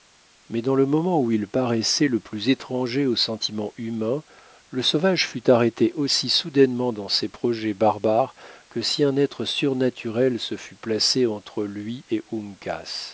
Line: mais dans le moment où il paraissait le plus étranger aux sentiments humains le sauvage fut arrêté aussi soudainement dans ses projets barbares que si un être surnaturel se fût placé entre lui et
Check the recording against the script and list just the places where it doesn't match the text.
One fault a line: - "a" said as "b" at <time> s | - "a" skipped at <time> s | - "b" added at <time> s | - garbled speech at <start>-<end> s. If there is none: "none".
none